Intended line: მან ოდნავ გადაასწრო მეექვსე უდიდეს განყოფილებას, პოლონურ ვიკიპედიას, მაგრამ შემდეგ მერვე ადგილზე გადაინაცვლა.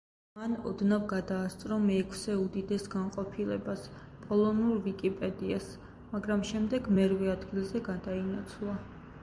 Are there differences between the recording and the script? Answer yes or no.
no